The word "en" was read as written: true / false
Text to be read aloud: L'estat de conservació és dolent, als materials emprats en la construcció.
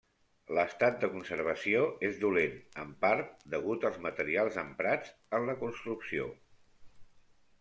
true